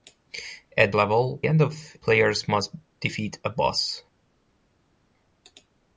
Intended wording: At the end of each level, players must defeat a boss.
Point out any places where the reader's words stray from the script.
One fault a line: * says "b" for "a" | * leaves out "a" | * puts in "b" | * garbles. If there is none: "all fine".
* says "level" for "the"
* leaves out "each level"